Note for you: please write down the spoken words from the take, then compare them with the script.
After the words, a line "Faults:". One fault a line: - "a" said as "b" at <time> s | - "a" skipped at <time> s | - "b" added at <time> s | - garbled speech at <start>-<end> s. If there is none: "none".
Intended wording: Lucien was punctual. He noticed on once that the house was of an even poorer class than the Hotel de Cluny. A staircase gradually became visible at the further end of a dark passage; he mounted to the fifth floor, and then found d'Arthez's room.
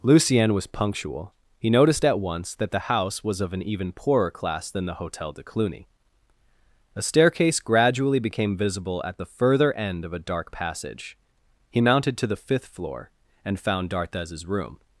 Lucien was punctual. He noticed at once that the house was of an even poorer class than the Hotel de Cluny. A staircase gradually became visible at the further end of a dark passage; he mounted to the fifth floor, and found d'Arthez's room.
Faults:
- "on" said as "at" at 2.0 s
- "then" skipped at 13.6 s